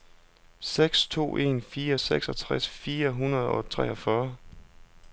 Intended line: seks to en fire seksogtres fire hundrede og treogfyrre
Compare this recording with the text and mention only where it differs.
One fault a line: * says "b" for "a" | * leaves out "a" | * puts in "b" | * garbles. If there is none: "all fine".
all fine